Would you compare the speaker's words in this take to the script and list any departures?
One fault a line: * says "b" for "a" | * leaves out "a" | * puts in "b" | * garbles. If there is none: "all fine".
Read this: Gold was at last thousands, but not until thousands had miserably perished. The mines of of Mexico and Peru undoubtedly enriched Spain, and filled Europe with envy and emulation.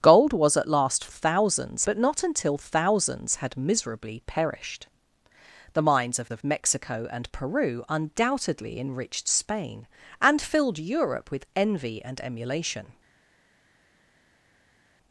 all fine